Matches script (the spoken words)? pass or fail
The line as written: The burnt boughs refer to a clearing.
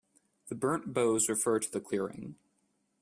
fail